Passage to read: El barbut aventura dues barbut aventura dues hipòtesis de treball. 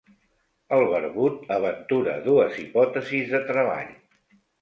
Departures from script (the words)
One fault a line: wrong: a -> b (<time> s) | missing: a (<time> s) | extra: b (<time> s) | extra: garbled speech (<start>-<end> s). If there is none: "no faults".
missing: barbut aventura dues (2.6 s)